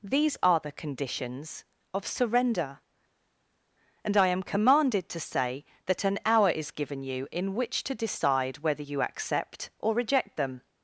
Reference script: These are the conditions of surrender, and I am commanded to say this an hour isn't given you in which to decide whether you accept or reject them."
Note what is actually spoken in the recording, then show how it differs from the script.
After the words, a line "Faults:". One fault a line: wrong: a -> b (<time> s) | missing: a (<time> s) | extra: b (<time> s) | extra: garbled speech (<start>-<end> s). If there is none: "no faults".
These are the conditions of surrender, and I am commanded to say that an hour is given you in which to decide whether you accept or reject them."
Faults:
wrong: this -> that (5.9 s)
wrong: isn't -> is (6.5 s)